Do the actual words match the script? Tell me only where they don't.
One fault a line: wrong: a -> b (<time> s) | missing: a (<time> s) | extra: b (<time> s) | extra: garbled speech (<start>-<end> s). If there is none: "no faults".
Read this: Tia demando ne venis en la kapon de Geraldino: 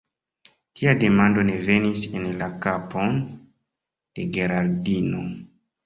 no faults